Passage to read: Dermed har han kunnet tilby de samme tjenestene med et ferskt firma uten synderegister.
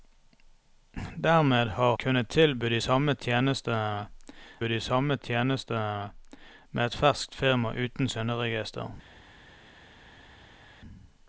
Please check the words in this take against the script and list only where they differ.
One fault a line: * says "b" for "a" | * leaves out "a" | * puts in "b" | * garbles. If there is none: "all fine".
* leaves out "han"
* puts in "de samme tjenestene"